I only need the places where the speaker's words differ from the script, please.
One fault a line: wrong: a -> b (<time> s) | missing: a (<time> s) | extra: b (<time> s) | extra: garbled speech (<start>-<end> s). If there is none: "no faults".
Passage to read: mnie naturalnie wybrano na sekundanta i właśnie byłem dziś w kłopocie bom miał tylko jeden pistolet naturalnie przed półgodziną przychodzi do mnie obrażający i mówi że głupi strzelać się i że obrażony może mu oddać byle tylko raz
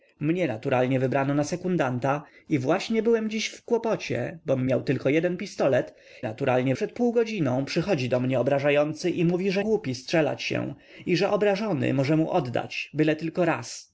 no faults